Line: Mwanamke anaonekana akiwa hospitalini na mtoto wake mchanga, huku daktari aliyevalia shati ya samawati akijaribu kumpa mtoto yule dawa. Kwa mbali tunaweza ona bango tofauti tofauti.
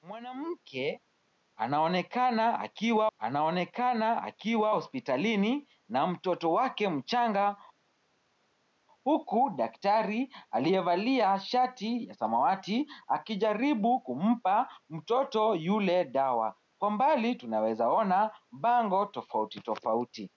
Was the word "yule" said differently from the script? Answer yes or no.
no